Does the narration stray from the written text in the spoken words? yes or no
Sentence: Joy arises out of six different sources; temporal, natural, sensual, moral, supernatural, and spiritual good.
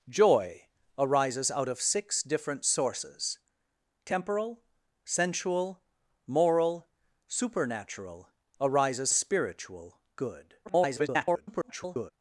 yes